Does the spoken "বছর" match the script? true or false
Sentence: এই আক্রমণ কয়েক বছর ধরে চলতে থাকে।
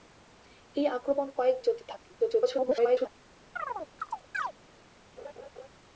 false